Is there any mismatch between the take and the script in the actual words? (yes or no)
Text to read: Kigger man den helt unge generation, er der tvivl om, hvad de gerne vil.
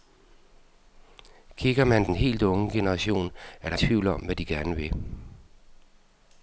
no